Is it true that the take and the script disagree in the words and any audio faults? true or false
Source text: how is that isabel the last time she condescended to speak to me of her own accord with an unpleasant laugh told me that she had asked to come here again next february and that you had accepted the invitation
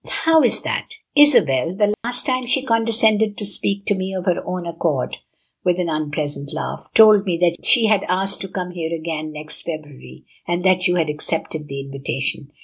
true